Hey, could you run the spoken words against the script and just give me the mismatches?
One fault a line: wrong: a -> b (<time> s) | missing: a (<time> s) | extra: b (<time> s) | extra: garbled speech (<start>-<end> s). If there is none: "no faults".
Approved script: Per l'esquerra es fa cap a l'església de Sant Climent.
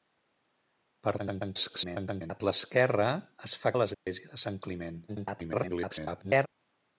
extra: garbled speech (1.2-2.4 s)
missing: cap (3.7 s)
extra: garbled speech (5.1-6.5 s)